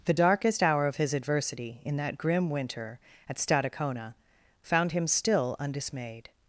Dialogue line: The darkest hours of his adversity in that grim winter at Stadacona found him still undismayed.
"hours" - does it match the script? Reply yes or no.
no